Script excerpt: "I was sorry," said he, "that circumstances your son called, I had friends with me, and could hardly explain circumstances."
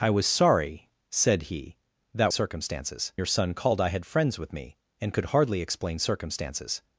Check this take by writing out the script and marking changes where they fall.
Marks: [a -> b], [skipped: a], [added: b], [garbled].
"I was sorry," said he, "that circumstances your son called, I had friends with me, and could hardly explain circumstances."